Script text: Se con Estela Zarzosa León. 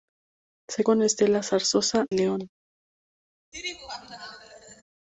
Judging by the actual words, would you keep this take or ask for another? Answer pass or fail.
pass